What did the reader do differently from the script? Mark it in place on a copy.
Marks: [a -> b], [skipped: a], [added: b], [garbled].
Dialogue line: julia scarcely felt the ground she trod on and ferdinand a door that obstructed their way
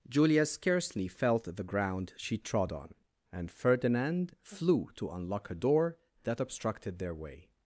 julia scarcely felt the ground she trod on and ferdinand [added: flew to unlock] a door that obstructed their way